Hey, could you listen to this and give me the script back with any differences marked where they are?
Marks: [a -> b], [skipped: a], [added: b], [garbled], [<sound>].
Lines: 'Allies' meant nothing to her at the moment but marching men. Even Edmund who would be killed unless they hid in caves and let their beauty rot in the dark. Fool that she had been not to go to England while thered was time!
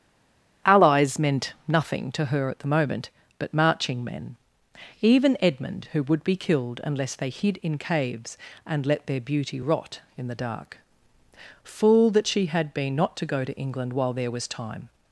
'Allies' meant nothing to her at the moment but marching men. Even Edmund who would be killed unless they hid in caves and let their beauty rot in the dark. Fool that she had been not to go to England while [thered -> there] was time!